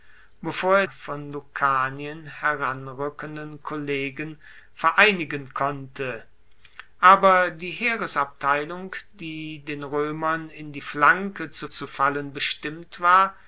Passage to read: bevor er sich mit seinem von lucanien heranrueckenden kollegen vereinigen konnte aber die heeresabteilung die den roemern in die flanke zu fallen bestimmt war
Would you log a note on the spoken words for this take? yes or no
yes